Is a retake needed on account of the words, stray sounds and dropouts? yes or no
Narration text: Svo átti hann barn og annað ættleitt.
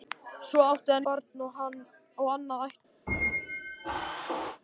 yes